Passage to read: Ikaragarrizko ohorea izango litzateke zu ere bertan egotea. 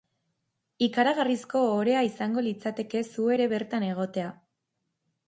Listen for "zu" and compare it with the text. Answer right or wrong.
right